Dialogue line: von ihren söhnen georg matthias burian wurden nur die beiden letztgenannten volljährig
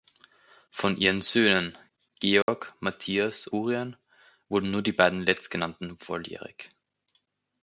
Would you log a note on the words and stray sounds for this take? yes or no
yes